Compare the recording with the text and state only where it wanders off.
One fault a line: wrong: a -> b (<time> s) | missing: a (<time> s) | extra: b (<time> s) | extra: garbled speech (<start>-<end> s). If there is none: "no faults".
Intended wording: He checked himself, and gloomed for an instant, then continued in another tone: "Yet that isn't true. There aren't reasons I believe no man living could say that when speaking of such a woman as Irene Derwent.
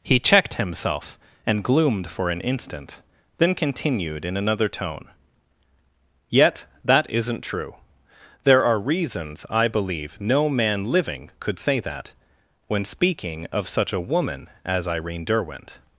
wrong: aren't -> are (8.7 s)